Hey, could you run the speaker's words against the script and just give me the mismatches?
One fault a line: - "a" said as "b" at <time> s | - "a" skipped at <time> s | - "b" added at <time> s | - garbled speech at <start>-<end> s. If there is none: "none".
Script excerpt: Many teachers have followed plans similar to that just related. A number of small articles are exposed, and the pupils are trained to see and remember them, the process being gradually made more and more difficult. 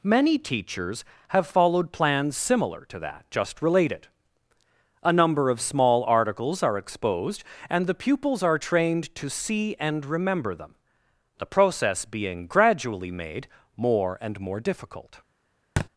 none